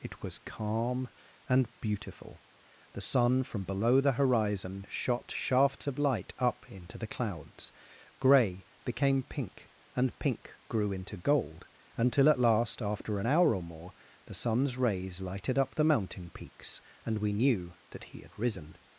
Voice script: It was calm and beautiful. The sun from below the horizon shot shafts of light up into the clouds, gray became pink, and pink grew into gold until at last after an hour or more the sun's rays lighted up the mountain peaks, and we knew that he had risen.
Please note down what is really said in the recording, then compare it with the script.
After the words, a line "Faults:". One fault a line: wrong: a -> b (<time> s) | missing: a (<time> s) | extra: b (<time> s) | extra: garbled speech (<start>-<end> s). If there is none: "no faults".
It was calm and beautiful. The sun from below the horizon shot shafts of light up into the clouds, gray became pink, and pink grew into gold until at last after an hour or more the sun's rays lighted up the mountain peaks, and we knew that he had risen.
Faults:
no faults